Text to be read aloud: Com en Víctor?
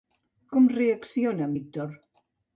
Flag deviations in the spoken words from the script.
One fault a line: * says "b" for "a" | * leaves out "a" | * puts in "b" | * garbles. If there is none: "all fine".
* puts in "reacciona"